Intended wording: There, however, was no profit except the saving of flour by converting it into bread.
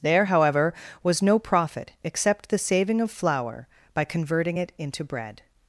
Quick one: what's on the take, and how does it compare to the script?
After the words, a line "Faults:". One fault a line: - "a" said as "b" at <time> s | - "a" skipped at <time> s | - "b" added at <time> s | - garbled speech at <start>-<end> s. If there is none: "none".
There, however, was no profit except the saving of flour by converting it into bread.
Faults:
none